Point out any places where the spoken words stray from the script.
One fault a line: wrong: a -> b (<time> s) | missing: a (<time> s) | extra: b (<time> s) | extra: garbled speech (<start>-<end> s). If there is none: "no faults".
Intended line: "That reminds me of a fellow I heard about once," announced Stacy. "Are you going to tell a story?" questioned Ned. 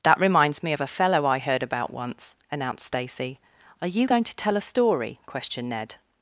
no faults